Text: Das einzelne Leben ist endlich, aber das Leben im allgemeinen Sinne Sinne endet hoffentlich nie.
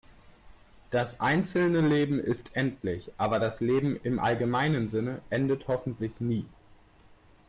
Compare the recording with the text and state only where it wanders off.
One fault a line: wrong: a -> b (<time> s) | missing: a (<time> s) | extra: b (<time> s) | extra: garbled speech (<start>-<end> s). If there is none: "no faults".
missing: Sinne (5.2 s)